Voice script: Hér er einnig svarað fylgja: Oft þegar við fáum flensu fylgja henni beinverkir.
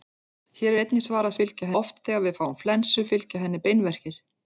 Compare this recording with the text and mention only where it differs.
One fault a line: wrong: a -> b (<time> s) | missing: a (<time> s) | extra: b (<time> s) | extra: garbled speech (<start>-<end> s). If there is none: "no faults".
no faults